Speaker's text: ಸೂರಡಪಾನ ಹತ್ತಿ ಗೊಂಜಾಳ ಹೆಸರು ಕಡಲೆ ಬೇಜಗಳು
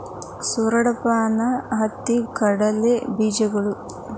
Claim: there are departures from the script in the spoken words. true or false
true